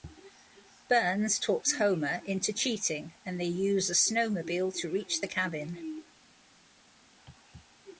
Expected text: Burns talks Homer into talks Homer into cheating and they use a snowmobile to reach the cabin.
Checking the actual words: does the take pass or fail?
fail